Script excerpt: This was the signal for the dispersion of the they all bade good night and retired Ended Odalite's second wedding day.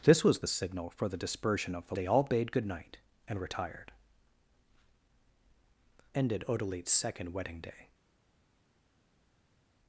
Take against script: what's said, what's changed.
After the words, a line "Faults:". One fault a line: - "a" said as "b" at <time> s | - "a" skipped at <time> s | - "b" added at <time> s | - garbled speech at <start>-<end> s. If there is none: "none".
This was the signal for the dispersion of the they all bade good night and retired Ended Odalite's second wedding day.
Faults:
none